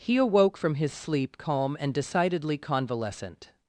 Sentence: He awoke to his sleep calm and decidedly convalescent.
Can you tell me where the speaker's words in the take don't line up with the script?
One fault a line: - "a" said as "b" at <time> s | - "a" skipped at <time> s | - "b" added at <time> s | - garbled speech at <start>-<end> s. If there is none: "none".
- "to" said as "from" at 0.6 s